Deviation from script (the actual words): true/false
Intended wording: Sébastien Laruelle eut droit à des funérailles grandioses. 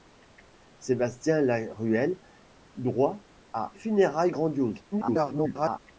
true